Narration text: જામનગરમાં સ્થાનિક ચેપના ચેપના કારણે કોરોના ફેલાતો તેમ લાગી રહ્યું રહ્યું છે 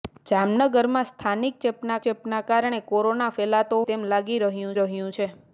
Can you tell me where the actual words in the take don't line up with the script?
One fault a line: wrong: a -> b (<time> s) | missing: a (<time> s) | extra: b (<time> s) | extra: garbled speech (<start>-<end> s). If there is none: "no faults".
no faults